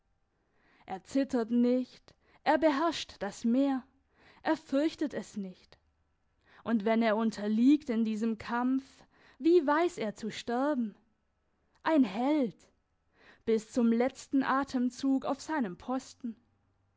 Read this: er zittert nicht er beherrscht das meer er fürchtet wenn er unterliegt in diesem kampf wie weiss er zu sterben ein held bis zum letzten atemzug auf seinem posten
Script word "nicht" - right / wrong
right